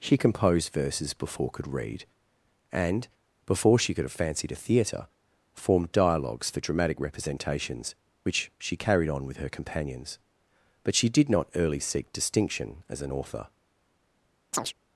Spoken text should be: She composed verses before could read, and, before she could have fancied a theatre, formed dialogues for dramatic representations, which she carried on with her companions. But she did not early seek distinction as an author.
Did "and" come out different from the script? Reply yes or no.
no